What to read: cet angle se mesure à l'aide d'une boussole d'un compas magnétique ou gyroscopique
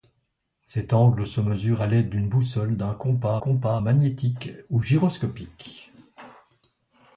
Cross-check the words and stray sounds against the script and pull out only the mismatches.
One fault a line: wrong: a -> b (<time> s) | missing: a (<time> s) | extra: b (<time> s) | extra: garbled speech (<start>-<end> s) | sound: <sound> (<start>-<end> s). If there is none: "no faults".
extra: compas (3.4 s)